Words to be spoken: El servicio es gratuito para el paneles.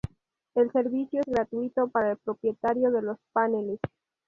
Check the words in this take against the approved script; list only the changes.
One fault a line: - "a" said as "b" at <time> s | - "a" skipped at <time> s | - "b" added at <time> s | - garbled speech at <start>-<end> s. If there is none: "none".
- "propietario de los" added at 2.2 s